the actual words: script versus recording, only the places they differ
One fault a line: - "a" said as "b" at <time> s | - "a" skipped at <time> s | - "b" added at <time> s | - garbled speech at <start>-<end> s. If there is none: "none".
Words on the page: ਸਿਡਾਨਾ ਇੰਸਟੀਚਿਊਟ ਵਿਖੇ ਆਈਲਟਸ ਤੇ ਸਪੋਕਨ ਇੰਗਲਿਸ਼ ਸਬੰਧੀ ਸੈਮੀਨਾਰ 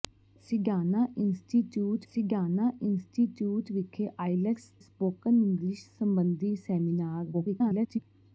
- "ਸਿਡਾਨਾ ਇੰਸਟੀਚਿਊਟ" added at 2.1 s
- "ਤੇ" skipped at 4.7 s
- garbled speech at 7.3-8.0 s